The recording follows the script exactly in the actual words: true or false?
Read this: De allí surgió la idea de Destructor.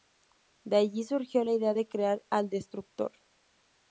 false